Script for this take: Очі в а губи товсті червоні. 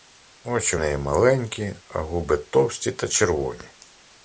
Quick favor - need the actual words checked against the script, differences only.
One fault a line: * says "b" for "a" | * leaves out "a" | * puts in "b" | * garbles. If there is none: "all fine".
* puts in "неї маленькі"
* puts in "та"